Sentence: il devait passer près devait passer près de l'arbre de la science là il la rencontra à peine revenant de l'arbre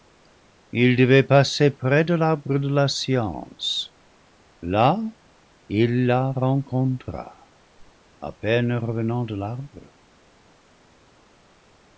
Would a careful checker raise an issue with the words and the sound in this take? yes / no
yes